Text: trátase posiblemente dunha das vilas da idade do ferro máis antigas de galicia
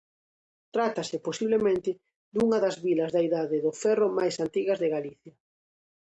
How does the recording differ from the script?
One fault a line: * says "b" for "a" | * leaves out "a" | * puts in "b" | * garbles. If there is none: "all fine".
all fine